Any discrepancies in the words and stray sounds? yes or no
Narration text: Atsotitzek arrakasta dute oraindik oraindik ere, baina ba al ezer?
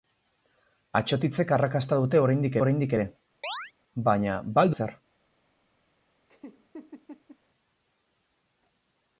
yes